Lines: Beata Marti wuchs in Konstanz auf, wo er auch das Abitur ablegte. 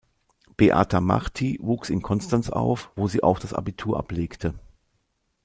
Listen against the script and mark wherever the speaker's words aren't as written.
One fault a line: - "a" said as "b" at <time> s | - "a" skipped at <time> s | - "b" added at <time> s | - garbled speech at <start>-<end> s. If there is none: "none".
- "er" said as "sie" at 3.1 s